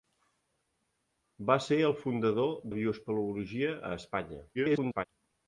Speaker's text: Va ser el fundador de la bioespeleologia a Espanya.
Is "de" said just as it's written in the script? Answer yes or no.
no